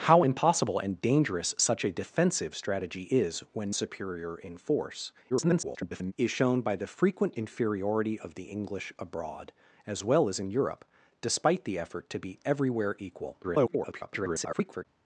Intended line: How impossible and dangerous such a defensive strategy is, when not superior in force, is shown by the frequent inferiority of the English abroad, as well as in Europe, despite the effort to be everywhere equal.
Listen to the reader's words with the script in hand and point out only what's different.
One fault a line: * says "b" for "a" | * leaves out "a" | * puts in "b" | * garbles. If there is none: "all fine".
* leaves out "not"
* garbles
* garbles